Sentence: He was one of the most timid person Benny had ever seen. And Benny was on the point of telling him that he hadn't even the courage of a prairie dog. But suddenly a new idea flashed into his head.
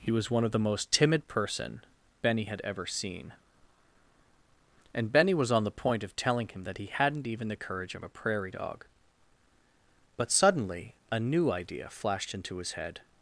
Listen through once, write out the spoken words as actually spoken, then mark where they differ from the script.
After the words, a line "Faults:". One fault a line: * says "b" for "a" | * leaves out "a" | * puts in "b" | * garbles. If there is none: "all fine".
He was one of the most timid person Benny had ever seen. And Benny was on the point of telling him that he hadn't even the courage of a prairie dog. But suddenly a new idea flashed into his head.
Faults:
all fine